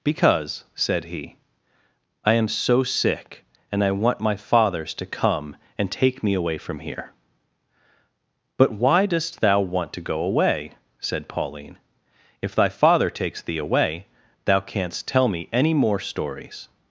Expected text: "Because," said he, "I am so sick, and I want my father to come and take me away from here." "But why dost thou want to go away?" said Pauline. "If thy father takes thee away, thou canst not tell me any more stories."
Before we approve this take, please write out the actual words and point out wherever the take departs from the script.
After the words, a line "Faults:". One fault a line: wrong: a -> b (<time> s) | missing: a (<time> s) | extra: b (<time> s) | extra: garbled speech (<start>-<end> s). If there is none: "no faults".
"Because," said he, "I am so sick, and I want my fathers to come and take me away from here." "But why dost thou want to go away?" said Pauline. "If thy father takes thee away, thou canst tell me any more stories."
Faults:
wrong: father -> fathers (4.3 s)
missing: not (15.1 s)